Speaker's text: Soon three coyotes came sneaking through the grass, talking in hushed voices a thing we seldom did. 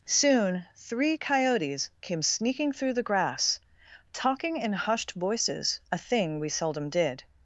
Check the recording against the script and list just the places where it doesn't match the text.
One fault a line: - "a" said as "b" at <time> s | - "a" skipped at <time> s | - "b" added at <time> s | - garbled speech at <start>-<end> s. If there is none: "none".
none